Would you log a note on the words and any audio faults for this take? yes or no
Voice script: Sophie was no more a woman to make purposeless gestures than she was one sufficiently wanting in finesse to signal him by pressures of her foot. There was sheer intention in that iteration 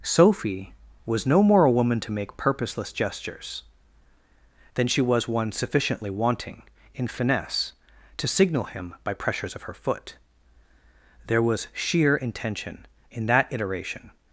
no